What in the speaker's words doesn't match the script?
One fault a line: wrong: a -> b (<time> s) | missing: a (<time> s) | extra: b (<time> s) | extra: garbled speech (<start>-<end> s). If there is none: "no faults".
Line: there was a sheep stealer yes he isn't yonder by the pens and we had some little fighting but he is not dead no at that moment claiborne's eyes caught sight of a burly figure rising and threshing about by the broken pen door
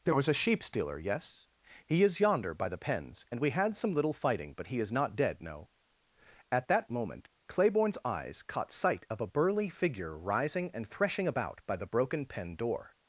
wrong: isn't -> is (2.0 s)